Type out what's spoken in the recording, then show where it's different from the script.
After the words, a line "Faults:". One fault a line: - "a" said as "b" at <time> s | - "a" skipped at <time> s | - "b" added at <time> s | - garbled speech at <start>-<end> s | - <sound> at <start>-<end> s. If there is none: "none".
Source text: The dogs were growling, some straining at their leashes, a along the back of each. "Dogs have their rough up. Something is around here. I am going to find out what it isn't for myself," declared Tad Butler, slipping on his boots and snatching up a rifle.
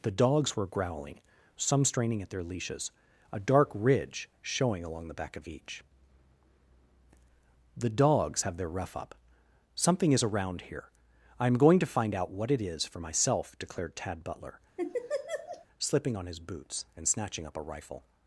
The dogs were growling, some straining at their leashes, a dark ridge showing along the back of each. "The dogs have their rough up. Something is around here. I am going to find out what it is for myself," declared Tad Butler, slipping on his boots and snatching up a rifle.
Faults:
- "dark ridge showing" added at 3.4 s
- "The" added at 7.8 s
- "isn't" said as "is" at 12.6 s
- laugh at 14.8-15.7 s